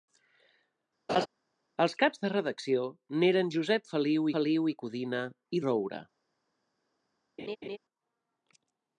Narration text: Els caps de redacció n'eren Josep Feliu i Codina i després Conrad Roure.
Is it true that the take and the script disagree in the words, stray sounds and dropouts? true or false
true